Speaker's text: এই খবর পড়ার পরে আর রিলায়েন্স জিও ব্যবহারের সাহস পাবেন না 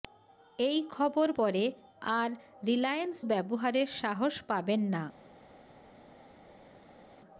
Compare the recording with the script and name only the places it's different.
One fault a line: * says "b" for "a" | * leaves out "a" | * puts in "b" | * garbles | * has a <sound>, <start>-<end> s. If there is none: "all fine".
* leaves out "পড়ার"
* leaves out "জিও"